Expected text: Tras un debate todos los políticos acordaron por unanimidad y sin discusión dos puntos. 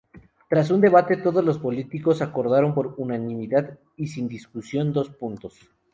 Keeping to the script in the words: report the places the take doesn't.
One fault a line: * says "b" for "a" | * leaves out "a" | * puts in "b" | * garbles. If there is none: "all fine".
all fine